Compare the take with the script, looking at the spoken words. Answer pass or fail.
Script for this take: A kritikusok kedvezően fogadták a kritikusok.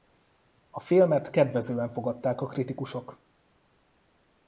fail